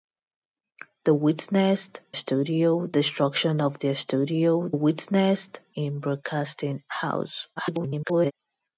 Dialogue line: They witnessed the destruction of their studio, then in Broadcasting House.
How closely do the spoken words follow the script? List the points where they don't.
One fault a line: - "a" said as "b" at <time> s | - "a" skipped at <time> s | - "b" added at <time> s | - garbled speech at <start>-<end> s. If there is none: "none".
- "the" said as "studio" at 2.1 s
- "then" said as "witnessed" at 4.7 s
- garbled speech at 7.6-8.3 s